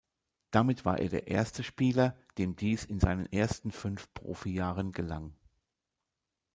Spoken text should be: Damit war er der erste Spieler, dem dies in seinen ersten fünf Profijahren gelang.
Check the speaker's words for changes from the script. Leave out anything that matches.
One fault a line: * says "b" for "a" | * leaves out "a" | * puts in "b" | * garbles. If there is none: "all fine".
all fine